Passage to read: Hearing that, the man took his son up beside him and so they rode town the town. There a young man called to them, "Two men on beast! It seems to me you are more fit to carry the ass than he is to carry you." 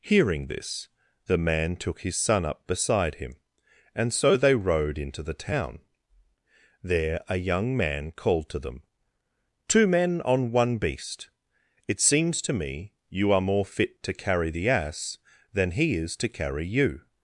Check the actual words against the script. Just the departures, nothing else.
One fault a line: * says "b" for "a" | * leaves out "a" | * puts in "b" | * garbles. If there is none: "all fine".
* says "this" for "that"
* says "into" for "town"
* puts in "one"